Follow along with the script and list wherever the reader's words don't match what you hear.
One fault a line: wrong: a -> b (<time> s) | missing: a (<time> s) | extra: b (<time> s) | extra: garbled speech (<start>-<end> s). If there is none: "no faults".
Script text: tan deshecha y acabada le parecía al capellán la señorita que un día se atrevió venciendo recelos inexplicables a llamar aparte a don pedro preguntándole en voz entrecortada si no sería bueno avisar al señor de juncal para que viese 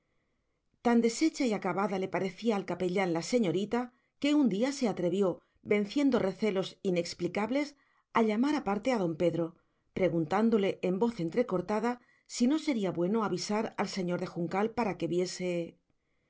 no faults